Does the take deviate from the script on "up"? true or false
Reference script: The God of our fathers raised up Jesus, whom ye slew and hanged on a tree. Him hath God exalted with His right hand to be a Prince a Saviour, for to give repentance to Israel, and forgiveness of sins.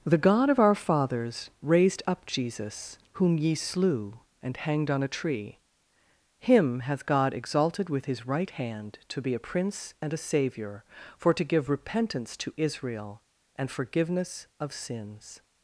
false